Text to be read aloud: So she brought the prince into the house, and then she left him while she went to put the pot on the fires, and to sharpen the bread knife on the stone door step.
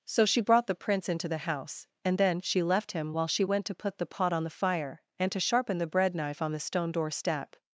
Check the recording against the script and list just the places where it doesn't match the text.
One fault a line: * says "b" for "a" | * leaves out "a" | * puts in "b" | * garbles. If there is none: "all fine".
* says "fire" for "fires"